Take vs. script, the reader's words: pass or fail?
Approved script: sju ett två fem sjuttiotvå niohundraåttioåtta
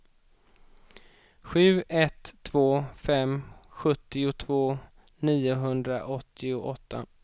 pass